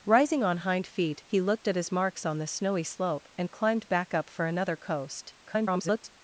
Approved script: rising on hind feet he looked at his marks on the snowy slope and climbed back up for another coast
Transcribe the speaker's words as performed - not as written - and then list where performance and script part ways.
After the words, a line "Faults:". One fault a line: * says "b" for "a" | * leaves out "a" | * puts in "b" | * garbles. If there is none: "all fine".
rising on hind feet he looked at his marks on the snowy slope and climbed back up for another coast [garbled]
Faults:
* garbles